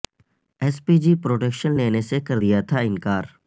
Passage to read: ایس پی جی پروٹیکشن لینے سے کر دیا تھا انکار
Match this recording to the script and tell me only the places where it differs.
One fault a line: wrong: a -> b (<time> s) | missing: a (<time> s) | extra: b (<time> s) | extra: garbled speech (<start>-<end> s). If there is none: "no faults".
no faults